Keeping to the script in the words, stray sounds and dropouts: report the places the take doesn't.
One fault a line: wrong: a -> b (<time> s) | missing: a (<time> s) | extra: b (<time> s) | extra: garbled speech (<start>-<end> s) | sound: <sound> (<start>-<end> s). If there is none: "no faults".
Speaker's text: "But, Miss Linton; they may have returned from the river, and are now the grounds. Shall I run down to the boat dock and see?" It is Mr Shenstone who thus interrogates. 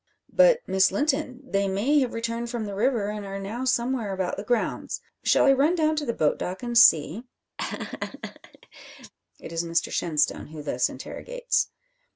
extra: somewhere about (3.6 s)
sound: laugh (7.6-9.1 s)